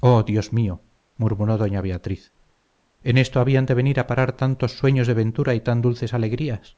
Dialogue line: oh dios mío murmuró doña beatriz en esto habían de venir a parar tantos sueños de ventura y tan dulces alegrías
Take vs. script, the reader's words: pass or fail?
pass